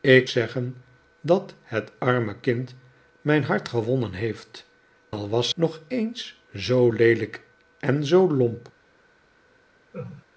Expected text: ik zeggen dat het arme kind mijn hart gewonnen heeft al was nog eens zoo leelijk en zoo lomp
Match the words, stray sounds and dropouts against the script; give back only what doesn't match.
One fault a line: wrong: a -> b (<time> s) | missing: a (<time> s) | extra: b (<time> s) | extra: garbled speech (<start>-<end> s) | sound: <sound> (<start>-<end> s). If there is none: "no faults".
sound: laugh (9.9-10.3 s)